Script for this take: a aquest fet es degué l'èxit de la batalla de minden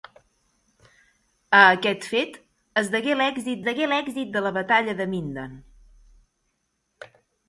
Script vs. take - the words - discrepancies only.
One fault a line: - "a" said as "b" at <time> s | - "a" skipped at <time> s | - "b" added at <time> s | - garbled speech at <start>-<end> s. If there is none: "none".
- "degué l'èxit" added at 3.7 s